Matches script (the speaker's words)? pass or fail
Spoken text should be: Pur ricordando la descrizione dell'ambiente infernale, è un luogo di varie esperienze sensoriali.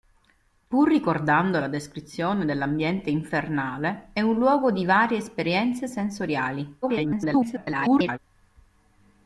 fail